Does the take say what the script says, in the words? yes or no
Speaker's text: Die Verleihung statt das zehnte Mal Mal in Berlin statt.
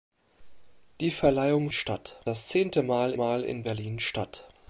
yes